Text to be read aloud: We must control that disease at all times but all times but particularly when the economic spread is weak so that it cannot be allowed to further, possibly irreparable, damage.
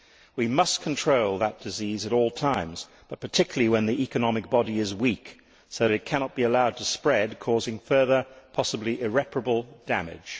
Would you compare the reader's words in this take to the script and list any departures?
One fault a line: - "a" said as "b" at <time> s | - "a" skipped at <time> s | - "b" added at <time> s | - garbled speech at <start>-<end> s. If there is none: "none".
- "all times but" skipped at 3.2 s
- "spread" said as "body" at 4.5 s
- "spread causing" added at 6.9 s